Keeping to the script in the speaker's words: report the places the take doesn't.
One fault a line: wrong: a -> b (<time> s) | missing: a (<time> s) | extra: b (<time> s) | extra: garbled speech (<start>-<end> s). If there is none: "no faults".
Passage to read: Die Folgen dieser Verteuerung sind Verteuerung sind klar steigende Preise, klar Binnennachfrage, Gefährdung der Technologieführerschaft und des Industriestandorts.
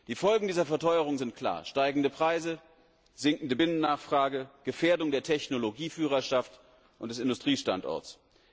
missing: Verteuerung sind (1.3 s)
wrong: klar -> sinkende (3.1 s)